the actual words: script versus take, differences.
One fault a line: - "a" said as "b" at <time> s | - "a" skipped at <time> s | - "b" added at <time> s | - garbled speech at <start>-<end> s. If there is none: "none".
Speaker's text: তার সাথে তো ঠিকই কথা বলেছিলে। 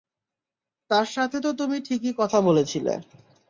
- "তুমি" added at 1.5 s